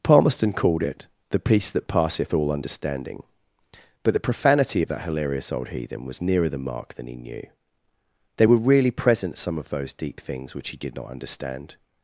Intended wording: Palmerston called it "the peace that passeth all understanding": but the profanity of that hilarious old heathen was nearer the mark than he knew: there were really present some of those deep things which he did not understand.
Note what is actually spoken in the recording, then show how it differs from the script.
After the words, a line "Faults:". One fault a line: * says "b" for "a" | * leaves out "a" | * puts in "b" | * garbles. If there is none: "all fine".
Palmerston called it "the peace that passeth all understanding": but the profanity of that hilarious old heathen was nearer the mark than he knew: they were really present some of those deep things which he did not understand.
Faults:
* says "they" for "there"